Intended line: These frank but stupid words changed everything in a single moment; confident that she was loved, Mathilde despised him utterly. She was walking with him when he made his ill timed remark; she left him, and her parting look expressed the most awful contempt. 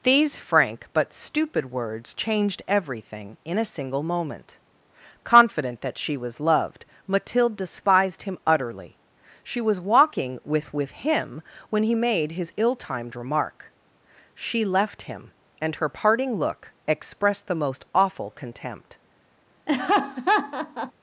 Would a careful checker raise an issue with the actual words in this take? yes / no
yes